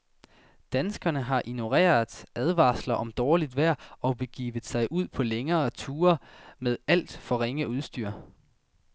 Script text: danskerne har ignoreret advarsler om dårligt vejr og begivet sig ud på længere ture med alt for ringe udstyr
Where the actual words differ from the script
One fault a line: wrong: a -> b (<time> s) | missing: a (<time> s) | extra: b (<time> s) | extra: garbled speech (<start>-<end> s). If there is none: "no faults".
no faults